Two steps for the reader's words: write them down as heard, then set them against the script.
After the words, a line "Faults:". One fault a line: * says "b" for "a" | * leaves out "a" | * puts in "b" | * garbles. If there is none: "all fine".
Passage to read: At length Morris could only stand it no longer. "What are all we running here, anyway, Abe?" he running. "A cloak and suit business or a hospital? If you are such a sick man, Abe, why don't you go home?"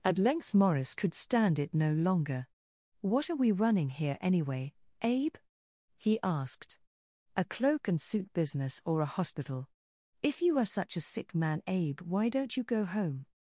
At length Morris could stand it no longer. "What are we running here, anyway, Abe?" he asked. "A cloak and suit business or a hospital? If you are such a sick man, Abe, why don't you go home?"
Faults:
* leaves out "only"
* leaves out "all"
* says "asked" for "running"